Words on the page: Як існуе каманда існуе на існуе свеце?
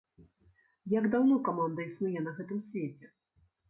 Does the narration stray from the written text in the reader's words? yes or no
yes